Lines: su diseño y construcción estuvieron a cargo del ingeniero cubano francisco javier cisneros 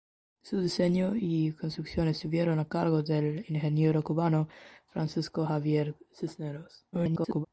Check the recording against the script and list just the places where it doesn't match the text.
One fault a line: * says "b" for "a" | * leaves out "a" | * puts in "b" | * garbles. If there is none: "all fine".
* garbles